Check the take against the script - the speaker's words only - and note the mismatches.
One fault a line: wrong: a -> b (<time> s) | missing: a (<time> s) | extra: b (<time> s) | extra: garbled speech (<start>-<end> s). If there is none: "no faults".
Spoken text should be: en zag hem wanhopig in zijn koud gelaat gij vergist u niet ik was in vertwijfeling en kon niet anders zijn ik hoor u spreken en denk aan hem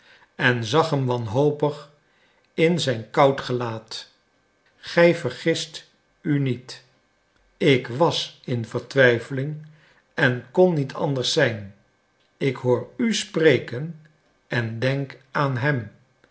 no faults